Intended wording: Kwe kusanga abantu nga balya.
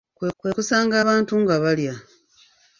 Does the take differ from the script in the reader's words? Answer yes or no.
yes